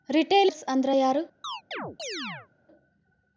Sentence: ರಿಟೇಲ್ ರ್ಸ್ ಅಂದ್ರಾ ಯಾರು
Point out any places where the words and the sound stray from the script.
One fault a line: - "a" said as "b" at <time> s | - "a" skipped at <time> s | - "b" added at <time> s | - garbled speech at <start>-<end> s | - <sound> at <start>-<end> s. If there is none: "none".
- chirp at 1.4-2.5 s